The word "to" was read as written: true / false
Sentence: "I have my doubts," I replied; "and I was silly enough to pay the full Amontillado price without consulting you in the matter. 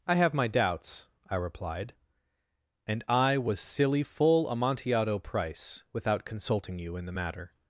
false